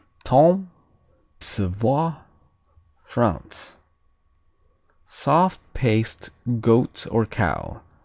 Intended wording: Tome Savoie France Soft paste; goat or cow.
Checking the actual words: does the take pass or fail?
pass